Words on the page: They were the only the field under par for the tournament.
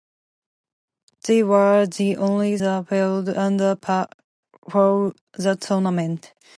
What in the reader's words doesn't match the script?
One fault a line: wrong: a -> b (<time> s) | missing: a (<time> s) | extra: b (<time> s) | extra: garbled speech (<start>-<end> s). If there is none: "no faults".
no faults